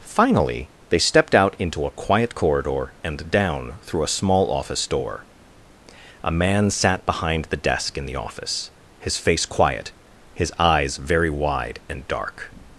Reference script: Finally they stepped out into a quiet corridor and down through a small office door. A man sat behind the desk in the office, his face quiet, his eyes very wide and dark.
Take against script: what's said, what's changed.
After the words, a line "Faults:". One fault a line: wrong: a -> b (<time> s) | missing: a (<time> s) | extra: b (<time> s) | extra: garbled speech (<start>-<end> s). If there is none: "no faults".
Finally they stepped out into a quiet corridor and down through a small office door. A man sat behind the desk in the office, his face quiet, his eyes very wide and dark.
Faults:
no faults